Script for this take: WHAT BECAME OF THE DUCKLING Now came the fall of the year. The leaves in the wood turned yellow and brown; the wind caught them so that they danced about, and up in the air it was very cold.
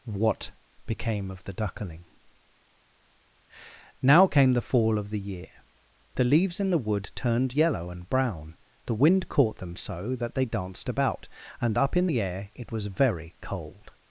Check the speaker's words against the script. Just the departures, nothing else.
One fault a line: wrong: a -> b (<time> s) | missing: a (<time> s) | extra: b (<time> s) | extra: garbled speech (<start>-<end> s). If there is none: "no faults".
no faults